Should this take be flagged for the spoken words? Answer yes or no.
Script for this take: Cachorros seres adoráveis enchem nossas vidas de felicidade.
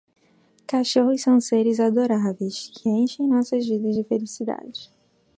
yes